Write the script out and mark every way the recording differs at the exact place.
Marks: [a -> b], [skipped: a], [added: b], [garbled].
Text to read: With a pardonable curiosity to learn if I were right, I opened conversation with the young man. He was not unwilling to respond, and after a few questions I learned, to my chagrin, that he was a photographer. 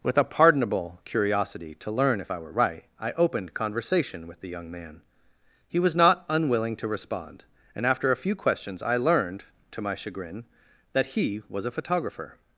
With a pardonable curiosity to learn if I were right, I opened conversation with the young man. He was not unwilling to respond, and after a few questions I learned, to my chagrin, that he was a photographer.